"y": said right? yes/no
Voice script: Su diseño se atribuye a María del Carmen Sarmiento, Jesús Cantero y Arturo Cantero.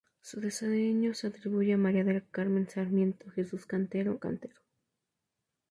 no